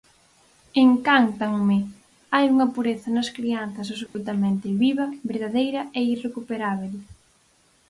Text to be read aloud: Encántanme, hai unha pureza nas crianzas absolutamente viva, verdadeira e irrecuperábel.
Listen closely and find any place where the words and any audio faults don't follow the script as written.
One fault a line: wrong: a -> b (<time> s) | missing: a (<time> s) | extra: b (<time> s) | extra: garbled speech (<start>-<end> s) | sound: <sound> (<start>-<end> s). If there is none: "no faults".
sound: dropout (4.1-4.1 s)